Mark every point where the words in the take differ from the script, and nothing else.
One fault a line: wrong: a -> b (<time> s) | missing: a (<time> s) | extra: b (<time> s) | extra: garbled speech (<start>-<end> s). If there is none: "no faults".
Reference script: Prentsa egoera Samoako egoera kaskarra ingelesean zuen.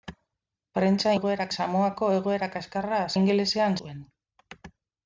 no faults